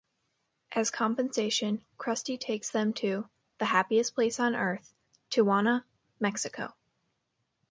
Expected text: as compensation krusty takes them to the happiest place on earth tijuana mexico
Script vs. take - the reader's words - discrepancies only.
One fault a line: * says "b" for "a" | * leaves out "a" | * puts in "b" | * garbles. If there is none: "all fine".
all fine